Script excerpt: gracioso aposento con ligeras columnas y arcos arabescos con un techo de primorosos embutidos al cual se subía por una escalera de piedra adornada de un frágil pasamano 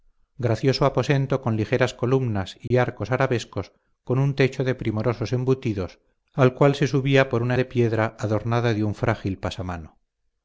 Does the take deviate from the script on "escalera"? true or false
true